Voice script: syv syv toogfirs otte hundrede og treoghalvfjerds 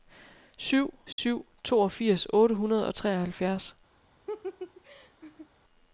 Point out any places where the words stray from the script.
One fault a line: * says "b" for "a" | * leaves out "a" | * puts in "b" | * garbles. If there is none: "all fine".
all fine